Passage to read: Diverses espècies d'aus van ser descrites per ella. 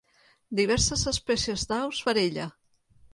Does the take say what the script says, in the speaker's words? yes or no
no